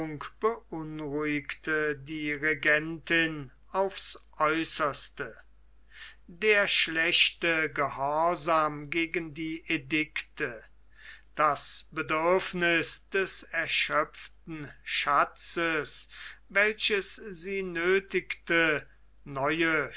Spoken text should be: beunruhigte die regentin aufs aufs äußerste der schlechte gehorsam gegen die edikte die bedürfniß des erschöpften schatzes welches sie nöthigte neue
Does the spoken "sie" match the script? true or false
true